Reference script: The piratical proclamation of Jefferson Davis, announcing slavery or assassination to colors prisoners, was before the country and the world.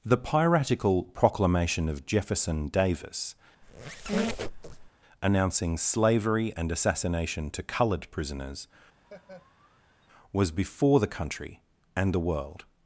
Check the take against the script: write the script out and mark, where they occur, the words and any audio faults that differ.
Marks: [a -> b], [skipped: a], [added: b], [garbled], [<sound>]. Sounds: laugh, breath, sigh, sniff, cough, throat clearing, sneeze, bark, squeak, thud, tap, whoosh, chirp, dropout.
The piratical proclamation of Jefferson Davis, [squeak] announcing slavery [or -> and] assassination to [colors -> colored] prisoners, [laugh] was before the country and the world.